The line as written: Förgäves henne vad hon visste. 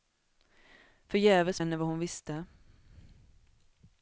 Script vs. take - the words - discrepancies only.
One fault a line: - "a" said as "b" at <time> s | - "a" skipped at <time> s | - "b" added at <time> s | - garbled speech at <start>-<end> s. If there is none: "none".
none